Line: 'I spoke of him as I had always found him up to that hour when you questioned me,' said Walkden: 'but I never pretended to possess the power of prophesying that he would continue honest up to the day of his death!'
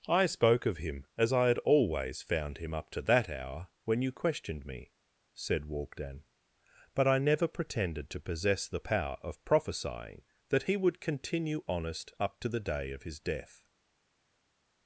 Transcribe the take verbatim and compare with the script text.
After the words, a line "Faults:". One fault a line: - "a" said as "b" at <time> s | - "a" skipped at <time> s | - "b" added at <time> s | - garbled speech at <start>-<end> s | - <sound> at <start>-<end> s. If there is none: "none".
'I spoke of him as I had always found him up to that hour when you questioned me,' said Walkden: 'but I never pretended to possess the power of prophesying that he would continue honest up to the day of his death!'
Faults:
none